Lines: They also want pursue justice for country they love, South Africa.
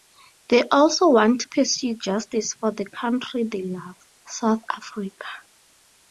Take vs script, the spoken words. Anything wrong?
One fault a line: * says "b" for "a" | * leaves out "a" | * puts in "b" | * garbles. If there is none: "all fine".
* puts in "to"
* puts in "the"